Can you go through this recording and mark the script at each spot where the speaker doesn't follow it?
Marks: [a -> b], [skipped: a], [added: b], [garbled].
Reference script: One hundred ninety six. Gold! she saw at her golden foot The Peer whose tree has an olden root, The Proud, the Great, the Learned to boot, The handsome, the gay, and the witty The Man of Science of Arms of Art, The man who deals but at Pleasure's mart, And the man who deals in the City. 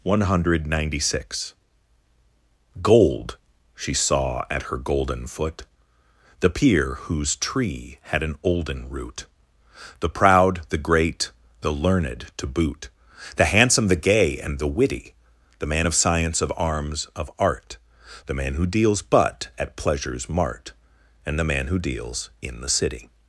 One hundred ninety six. Gold! she saw at her golden foot The Peer whose tree [has -> had] an olden root, The Proud, the Great, the Learned to boot, The handsome, the gay, and the witty The Man of Science of Arms of Art, The man who deals but at Pleasure's mart, And the man who deals in the City.